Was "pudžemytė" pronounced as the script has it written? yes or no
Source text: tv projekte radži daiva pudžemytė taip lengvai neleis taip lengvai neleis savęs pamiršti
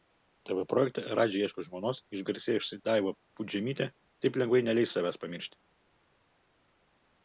no